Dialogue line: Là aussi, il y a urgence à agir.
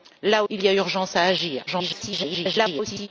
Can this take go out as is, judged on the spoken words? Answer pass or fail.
fail